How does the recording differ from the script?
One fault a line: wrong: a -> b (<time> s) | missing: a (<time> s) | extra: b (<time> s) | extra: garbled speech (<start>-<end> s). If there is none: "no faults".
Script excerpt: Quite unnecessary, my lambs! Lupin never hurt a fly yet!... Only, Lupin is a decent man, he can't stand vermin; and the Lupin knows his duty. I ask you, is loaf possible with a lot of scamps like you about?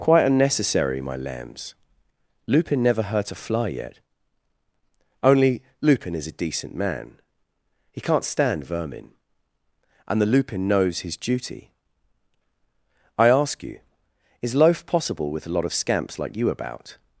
no faults